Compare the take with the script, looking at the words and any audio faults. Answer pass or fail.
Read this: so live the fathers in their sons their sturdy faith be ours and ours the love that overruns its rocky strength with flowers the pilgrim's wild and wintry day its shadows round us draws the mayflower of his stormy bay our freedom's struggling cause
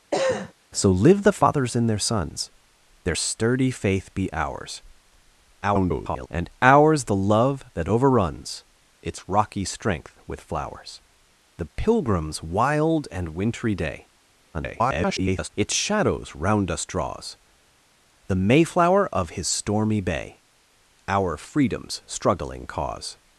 fail